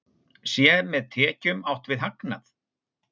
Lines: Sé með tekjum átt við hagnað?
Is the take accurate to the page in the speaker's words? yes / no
yes